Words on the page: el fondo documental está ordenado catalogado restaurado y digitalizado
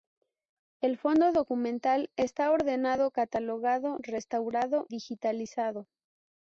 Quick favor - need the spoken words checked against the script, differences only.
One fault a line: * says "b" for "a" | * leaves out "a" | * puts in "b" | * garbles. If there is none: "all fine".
* leaves out "y"